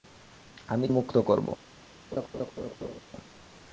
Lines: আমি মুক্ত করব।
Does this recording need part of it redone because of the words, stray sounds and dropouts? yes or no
yes